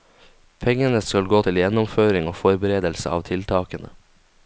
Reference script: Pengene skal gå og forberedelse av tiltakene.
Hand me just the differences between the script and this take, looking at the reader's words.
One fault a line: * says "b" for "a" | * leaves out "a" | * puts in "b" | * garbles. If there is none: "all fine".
* puts in "til gjennomføring"